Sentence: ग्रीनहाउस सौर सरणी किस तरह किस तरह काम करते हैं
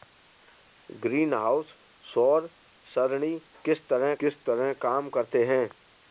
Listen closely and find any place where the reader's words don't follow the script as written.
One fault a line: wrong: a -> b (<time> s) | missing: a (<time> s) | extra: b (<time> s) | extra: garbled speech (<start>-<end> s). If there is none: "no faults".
no faults